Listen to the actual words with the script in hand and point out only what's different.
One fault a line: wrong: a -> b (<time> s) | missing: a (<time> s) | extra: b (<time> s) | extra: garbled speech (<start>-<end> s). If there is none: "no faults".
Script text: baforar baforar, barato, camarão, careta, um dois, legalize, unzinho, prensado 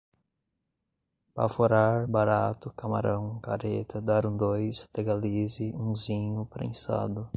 missing: baforar (2.1 s)
extra: dar (4.0 s)